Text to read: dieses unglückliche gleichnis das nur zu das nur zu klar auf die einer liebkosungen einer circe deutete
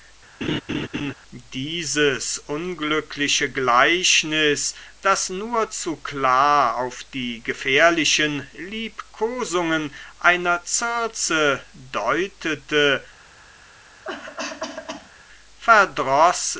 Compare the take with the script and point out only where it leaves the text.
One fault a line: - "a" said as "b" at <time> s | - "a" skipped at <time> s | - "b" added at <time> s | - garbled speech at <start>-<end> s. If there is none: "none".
- "das nur zu" skipped at 6.0 s
- "einer" said as "gefährlichen" at 7.4 s